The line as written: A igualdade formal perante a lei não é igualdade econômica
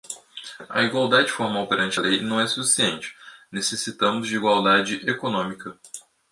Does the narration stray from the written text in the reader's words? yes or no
yes